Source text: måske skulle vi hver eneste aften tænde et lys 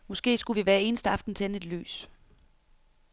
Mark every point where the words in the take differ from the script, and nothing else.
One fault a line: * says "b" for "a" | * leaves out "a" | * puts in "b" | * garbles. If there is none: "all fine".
all fine